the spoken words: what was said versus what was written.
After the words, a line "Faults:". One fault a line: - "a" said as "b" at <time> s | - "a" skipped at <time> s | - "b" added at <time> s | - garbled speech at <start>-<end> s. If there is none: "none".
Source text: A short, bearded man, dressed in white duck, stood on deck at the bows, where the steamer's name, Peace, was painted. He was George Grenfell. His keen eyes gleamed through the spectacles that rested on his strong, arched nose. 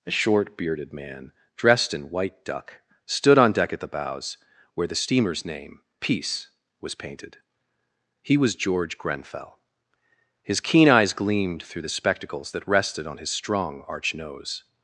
A short, bearded man, dressed in white duck, stood on deck at the bows, where the steamer's name, Peace, was painted. He was George Grenfell. His keen eyes gleamed through the spectacles that rested on his strong, arch nose.
Faults:
- "arched" said as "arch" at 13.9 s